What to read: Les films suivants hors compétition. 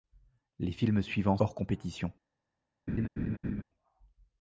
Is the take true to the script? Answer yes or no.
yes